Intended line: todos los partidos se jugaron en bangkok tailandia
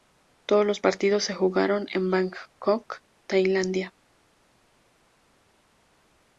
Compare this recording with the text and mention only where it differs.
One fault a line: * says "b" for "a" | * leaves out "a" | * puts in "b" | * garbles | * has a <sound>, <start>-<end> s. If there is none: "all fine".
all fine